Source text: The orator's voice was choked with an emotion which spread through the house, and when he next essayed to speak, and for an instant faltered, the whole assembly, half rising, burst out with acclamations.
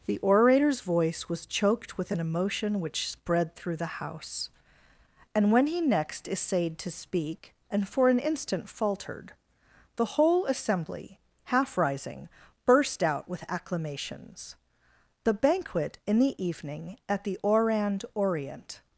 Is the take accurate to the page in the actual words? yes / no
no